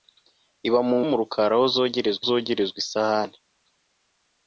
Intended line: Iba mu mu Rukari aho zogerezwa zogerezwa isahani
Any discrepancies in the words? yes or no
no